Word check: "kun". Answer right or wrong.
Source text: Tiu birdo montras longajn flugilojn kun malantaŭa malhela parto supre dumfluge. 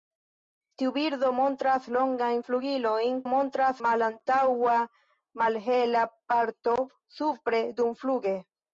wrong